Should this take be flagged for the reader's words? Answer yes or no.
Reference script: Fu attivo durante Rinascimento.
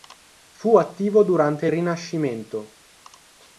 no